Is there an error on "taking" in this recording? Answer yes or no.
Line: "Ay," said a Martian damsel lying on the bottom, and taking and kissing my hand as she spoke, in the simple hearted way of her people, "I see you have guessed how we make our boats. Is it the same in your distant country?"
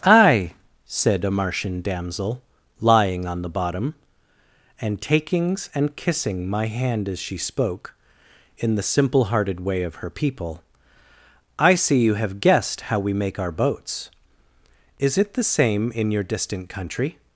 yes